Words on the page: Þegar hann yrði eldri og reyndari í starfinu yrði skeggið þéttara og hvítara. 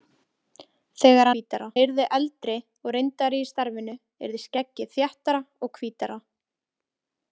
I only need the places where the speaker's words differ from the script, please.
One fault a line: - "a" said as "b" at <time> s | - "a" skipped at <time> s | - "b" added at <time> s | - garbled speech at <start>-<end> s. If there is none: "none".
- "hann" said as "hvítara" at 1.3 s